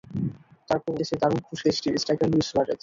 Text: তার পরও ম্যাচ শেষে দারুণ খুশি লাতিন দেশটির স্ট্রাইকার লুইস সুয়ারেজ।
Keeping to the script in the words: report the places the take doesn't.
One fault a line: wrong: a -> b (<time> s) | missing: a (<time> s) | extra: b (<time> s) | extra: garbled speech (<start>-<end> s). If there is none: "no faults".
missing: ম্যাচ (1.0 s)
missing: লাতিন (1.7 s)